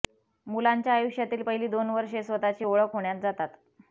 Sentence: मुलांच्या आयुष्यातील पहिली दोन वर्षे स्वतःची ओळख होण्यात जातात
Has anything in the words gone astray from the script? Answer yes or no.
no